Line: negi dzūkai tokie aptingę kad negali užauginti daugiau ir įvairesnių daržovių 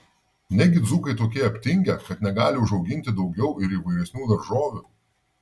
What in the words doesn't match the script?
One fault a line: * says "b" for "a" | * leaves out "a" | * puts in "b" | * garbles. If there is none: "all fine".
all fine